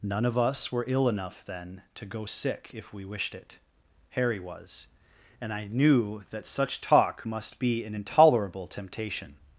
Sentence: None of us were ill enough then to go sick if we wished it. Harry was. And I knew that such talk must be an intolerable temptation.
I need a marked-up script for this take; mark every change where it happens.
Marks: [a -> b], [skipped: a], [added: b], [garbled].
None of us were ill enough then to go sick if we wished it. Harry was. And I knew that such talk must be an intolerable temptation.